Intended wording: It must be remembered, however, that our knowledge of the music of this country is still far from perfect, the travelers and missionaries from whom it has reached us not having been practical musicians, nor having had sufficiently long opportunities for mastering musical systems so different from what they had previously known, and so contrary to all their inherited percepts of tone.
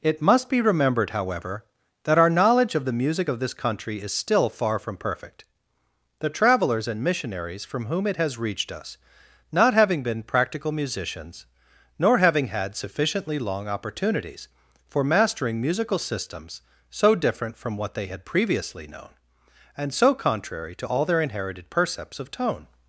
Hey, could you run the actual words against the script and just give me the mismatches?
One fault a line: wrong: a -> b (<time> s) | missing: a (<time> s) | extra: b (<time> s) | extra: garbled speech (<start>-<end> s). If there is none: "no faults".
no faults